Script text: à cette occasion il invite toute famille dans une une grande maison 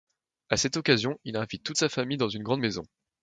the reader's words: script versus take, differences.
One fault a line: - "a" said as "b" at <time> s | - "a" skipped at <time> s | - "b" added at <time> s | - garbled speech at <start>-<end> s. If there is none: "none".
- "sa" added at 1.7 s
- "une" skipped at 2.4 s